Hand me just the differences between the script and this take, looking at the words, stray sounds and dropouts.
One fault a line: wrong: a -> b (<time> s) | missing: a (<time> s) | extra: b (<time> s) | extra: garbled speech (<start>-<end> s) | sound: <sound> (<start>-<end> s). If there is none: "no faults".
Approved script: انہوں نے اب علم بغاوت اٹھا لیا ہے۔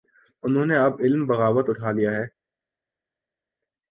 no faults